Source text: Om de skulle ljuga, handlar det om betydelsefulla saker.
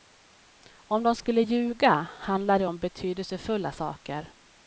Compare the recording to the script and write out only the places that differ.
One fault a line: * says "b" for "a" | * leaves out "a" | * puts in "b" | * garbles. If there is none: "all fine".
all fine